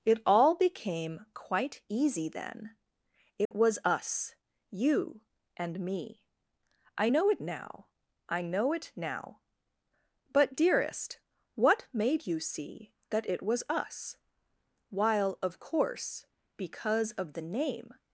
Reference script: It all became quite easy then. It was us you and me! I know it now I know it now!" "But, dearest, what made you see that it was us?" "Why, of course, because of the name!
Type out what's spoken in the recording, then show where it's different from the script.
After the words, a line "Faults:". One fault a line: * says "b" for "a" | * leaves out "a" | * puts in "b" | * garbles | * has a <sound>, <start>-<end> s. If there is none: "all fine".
It all became quite easy then. It was us you and me! I know it now I know it now!" "But, dearest, what made you see that it was us?" "While, of course, because of the name!
Faults:
* has a dropout, 3.5-3.5 s
* says "While" for "Why"